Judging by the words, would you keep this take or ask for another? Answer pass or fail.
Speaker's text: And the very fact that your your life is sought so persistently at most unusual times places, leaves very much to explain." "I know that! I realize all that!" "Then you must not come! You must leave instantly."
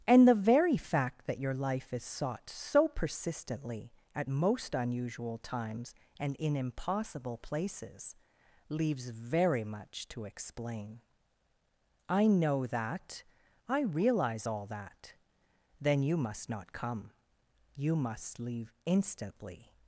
fail